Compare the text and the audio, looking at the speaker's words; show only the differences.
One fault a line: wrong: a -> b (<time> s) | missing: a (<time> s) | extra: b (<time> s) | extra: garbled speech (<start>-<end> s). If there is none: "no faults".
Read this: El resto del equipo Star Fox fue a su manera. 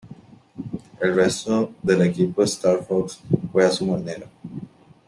no faults